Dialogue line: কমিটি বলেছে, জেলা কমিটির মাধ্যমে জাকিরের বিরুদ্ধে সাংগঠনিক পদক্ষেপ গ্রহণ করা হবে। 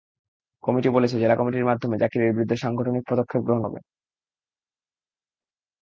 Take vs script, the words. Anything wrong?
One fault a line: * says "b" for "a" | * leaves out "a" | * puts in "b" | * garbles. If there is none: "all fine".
* leaves out "করা"